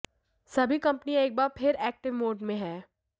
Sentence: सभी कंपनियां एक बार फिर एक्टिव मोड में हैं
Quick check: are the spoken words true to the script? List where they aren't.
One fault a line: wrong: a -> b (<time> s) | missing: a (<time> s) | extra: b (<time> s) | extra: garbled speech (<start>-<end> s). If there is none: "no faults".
no faults